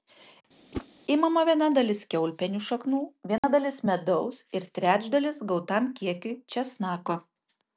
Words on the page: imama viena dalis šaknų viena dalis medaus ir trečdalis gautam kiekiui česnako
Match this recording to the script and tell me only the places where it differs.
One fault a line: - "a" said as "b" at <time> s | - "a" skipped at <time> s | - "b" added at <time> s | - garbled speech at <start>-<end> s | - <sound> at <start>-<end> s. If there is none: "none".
- whoosh at 0.7-0.9 s
- "kiaulpienių" added at 2.1 s
- dropout at 3.4-3.4 s